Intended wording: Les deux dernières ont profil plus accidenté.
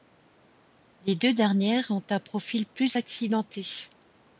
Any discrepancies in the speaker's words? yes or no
yes